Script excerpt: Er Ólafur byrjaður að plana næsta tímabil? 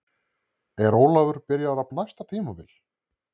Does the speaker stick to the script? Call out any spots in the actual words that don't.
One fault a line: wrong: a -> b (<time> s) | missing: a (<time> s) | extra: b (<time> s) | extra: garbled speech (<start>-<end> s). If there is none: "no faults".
missing: plana (1.9 s)